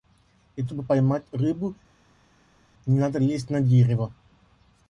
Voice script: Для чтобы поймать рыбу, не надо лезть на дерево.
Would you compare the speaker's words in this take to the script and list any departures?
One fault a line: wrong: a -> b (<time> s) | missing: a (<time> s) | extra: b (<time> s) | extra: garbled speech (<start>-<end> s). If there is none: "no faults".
no faults